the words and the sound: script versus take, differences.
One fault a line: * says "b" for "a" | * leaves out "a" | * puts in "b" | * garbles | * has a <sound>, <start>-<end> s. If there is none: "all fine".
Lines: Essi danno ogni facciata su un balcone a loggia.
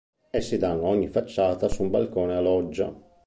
all fine